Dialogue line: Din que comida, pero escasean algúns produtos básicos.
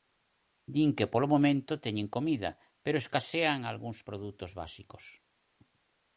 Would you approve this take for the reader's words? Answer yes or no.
no